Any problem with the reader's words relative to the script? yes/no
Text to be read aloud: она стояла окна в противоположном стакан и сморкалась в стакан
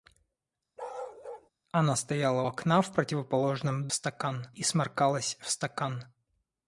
no